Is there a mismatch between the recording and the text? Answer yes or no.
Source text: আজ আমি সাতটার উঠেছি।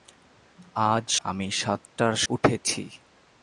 no